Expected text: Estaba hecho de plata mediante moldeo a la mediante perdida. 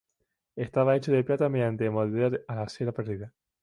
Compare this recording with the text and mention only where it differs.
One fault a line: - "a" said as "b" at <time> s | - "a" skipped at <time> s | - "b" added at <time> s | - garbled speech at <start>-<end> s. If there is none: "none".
- "mediante" said as "cera" at 2.7 s